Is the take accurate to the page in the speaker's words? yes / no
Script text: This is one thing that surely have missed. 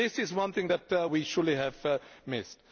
no